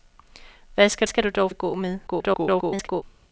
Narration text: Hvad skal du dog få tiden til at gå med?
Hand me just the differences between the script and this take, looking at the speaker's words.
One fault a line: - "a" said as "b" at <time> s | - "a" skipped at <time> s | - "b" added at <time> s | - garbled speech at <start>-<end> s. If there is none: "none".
- "skal" added at 1.1 s
- "få tiden til" skipped at 1.5 s
- garbled speech at 2.1-3.0 s